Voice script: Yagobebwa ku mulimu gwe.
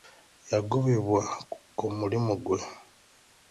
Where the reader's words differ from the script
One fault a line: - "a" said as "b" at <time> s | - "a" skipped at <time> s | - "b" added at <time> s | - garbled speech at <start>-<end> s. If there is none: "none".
none